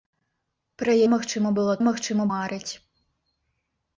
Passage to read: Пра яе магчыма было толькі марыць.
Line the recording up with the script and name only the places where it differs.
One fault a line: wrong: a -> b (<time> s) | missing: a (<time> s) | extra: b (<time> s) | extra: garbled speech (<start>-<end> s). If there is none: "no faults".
missing: яе (0.9 s)
wrong: толькі -> магчыма (1.9 s)